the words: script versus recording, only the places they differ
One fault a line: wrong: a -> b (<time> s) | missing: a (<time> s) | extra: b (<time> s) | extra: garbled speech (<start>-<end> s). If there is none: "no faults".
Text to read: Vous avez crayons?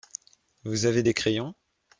extra: des (1.0 s)